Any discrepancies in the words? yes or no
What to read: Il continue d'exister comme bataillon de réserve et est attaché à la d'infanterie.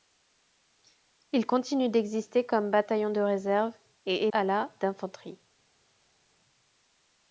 yes